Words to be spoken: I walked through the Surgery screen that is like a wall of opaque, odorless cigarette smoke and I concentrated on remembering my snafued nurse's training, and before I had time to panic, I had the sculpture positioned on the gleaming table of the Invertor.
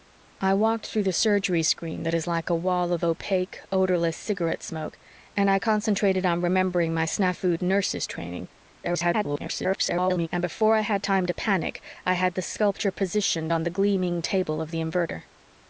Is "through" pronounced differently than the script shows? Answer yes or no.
no